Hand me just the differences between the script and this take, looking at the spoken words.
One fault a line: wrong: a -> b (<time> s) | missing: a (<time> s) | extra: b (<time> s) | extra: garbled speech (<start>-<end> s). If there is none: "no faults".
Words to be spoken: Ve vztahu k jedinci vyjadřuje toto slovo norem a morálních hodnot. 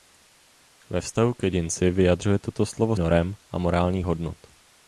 no faults